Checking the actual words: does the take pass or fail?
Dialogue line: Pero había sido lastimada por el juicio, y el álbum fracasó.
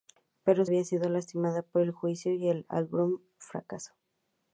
pass